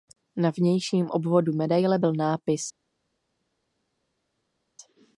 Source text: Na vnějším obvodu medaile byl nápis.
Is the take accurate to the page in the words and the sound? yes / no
yes